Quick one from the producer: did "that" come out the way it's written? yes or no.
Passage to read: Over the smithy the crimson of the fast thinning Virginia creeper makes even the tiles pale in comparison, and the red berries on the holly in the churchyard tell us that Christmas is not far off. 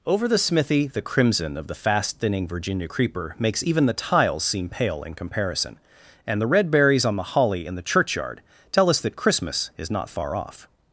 yes